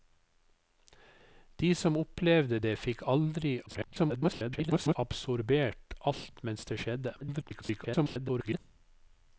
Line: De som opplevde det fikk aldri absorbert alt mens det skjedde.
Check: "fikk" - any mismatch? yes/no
no